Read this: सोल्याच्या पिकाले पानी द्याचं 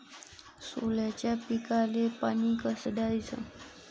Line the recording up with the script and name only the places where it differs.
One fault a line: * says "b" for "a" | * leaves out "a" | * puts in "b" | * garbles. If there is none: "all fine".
* puts in "कस"